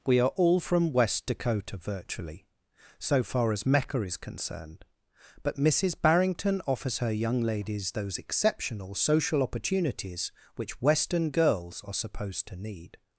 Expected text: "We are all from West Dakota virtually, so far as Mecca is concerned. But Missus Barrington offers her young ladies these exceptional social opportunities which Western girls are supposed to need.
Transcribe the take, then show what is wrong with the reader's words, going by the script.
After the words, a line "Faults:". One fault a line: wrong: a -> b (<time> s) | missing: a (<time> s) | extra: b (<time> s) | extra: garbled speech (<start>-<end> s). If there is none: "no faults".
"We are all from West Dakota virtually, so far as Mecca is concerned. But Missus Barrington offers her young ladies those exceptional social opportunities which Western girls are supposed to need.
Faults:
wrong: these -> those (7.9 s)